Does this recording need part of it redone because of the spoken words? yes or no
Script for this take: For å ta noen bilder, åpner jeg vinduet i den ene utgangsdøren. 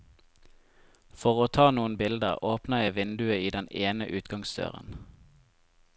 no